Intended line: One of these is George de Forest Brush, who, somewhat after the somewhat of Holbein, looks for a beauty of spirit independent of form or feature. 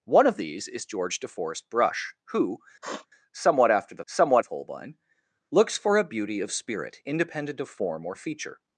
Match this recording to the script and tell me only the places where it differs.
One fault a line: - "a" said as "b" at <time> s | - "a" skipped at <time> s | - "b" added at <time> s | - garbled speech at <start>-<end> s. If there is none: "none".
none